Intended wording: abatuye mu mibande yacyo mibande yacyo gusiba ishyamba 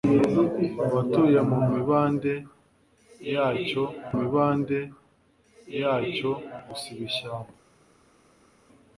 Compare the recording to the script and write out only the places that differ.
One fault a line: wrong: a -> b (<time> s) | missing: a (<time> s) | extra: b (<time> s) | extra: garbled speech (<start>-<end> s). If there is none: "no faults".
no faults